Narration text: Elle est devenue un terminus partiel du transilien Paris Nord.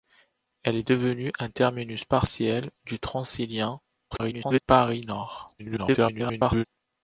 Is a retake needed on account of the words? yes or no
yes